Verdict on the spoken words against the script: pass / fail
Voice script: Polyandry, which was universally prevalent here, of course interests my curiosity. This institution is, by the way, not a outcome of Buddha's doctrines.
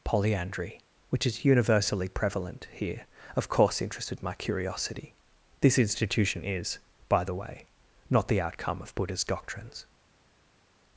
fail